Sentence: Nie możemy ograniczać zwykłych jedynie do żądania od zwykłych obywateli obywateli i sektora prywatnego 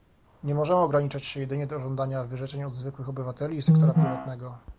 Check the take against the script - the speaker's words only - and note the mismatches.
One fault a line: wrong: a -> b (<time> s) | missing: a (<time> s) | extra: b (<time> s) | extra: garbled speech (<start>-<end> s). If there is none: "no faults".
wrong: zwykłych -> się (1.2 s)
extra: wyrzeczeń (2.2 s)
missing: obywateli (3.6 s)